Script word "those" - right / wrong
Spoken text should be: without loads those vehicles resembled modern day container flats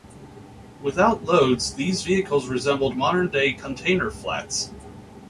wrong